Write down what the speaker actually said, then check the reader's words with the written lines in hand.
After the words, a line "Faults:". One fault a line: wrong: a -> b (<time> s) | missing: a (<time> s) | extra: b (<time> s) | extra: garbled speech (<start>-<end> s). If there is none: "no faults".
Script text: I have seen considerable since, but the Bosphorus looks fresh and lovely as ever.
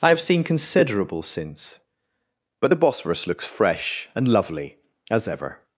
I have seen considerable since, but the Bosphorus looks fresh and lovely as ever.
Faults:
no faults